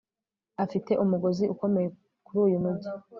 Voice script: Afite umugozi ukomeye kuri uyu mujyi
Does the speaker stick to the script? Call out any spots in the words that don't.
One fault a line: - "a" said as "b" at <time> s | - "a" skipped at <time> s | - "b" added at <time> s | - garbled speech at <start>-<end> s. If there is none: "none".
none